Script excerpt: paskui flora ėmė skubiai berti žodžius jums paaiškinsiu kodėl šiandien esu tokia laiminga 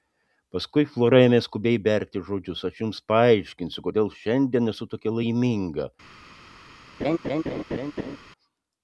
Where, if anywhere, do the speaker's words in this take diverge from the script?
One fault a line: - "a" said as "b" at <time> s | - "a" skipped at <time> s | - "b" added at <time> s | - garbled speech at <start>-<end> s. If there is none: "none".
- "aš" added at 2.7 s